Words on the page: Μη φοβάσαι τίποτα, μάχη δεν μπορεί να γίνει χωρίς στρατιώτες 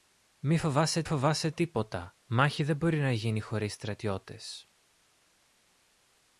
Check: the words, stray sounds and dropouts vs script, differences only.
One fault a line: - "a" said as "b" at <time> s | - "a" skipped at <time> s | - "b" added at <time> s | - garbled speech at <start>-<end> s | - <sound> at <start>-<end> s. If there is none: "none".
- "φοβάσαι" added at 1.0 s